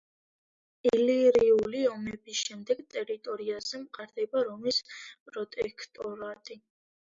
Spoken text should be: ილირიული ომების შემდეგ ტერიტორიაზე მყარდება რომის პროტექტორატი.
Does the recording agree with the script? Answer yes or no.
yes